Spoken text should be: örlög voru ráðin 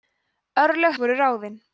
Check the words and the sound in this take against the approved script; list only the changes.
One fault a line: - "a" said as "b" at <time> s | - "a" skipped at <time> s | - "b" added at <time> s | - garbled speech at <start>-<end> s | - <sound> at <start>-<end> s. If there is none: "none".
none